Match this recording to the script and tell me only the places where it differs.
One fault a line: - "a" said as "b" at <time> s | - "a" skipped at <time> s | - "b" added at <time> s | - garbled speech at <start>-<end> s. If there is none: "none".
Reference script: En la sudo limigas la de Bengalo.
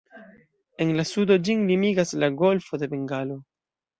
- "ĝin" added at 1.5 s
- "golfo" added at 2.4 s